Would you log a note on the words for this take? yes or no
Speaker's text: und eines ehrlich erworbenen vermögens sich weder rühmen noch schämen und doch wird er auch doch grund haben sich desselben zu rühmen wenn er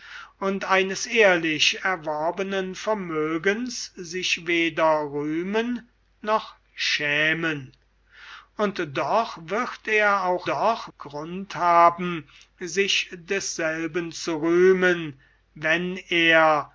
no